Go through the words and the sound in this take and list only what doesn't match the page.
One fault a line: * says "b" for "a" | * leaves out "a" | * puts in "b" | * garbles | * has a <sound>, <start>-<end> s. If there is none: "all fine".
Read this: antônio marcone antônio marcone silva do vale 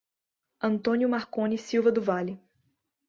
* leaves out "antônio marcone"